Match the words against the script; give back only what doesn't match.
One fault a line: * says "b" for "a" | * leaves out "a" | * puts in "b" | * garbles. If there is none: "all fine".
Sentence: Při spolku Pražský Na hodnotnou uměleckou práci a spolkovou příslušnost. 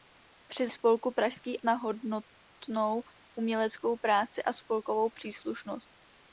all fine